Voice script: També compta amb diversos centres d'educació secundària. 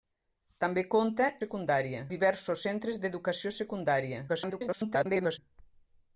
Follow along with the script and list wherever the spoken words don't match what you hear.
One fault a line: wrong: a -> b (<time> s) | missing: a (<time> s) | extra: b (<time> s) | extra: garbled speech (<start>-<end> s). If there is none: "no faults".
wrong: amb -> secundària (1.4 s)
extra: garbled speech (4.3-5.4 s)